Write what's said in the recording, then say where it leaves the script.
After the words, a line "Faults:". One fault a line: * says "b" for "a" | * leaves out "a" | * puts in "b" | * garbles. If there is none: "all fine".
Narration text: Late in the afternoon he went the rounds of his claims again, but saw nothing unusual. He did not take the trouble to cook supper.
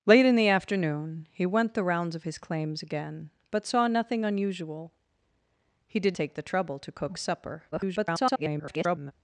Late in the afternoon he went the rounds of his claims again, but saw nothing unusual. He did take the trouble to cook supper. [garbled]
Faults:
* leaves out "not"
* garbles